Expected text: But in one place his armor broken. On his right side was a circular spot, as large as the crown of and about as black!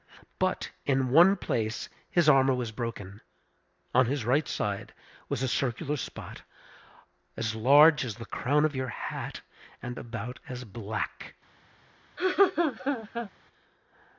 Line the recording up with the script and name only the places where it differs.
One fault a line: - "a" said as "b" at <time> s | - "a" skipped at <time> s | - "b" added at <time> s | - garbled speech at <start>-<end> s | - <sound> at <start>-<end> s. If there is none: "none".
- "was" added at 2.5 s
- "your hat" added at 8.8 s
- laugh at 12.2-13.3 s